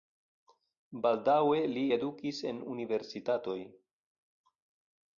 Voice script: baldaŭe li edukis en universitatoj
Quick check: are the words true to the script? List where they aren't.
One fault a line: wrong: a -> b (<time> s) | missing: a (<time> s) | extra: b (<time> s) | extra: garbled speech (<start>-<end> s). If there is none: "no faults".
no faults